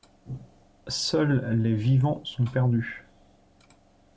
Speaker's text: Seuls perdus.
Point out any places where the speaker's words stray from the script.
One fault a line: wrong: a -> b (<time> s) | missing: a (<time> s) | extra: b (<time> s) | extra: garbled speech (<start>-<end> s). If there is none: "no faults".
extra: les vivants sont (1.6 s)